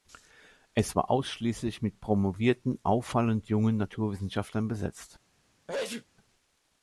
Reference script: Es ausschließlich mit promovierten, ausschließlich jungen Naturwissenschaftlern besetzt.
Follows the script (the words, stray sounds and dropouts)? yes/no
no